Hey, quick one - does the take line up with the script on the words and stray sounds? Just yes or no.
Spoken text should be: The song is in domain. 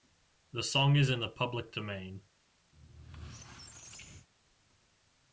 no